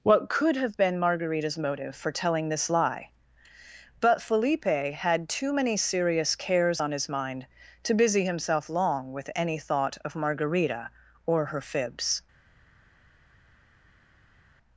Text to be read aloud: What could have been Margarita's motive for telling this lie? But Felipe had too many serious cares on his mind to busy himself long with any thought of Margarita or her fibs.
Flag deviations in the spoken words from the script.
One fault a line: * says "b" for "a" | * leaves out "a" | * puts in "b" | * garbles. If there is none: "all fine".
all fine